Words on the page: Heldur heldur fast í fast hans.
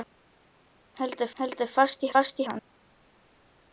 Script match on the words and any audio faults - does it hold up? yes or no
yes